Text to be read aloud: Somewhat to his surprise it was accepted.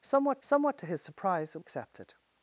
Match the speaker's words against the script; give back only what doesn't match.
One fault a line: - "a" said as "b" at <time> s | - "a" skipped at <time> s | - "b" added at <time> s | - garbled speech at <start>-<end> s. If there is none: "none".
- "somewhat" added at 0.4 s
- "was" skipped at 1.6 s